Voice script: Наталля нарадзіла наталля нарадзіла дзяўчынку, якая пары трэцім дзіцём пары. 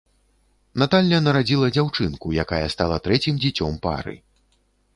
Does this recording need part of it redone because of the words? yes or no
yes